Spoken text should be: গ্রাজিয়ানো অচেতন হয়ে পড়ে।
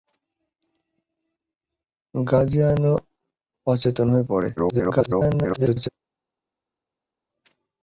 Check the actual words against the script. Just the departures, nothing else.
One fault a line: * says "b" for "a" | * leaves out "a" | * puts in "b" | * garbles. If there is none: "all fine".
* garbles